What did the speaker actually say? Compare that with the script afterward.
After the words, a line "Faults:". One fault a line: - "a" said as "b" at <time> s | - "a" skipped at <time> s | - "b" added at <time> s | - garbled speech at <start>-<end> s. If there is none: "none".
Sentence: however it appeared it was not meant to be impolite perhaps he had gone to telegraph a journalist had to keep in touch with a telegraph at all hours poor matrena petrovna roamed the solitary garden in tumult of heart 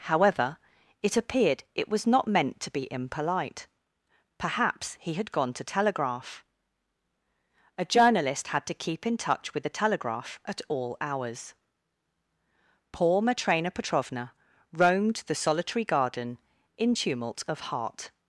however it appeared it was not meant to be impolite perhaps he had gone to telegraph a journalist had to keep in touch with the telegraph at all hours poor matrena petrovna roamed the solitary garden in tumult of heart
Faults:
- "a" said as "the" at 9.6 s